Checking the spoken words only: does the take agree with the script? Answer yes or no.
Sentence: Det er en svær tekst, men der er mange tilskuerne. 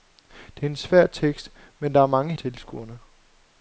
yes